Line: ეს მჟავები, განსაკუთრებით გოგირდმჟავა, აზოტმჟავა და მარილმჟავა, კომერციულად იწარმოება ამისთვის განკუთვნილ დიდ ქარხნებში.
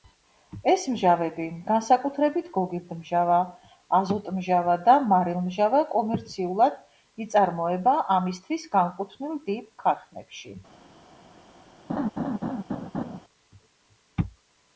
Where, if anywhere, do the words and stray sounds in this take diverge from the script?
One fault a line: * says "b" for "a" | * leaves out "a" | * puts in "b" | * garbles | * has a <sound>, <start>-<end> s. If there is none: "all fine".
* has a laugh, 11.9-13.2 s